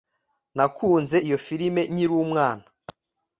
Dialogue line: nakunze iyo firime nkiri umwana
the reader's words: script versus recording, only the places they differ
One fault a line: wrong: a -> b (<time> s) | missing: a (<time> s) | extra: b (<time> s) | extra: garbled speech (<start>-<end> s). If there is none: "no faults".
no faults